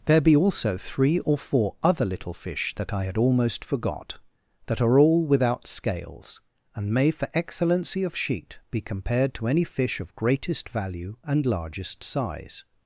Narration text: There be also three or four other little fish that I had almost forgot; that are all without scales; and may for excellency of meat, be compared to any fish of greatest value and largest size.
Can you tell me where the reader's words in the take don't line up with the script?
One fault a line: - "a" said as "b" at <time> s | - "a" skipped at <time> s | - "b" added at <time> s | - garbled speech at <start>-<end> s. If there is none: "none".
- "meat" said as "sheet" at 8.2 s